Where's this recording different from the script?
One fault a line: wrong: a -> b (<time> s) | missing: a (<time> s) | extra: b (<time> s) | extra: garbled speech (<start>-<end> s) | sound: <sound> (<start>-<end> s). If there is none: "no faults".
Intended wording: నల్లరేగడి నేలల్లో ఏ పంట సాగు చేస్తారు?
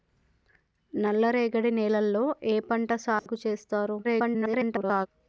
sound: dropout (3.2-3.3 s)
extra: garbled speech (4.0-5.1 s)